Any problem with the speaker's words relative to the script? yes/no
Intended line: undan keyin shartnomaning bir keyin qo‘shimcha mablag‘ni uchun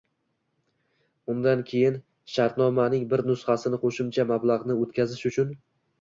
yes